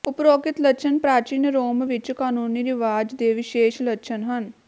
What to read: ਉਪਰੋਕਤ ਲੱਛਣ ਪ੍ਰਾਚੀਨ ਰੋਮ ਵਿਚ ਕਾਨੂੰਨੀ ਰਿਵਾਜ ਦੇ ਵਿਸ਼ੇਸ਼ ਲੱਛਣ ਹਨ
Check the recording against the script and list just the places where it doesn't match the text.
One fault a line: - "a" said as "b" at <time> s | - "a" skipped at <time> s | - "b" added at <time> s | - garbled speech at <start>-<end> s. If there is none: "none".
none